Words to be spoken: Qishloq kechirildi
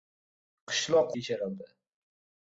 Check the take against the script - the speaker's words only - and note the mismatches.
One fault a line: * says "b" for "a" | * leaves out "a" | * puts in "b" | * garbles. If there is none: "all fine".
all fine